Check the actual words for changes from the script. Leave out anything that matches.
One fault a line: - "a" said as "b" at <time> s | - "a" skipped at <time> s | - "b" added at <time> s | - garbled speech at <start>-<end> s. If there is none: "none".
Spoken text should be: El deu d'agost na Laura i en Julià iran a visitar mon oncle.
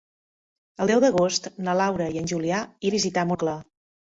- "iran" skipped at 2.6 s
- "mon" skipped at 3.3 s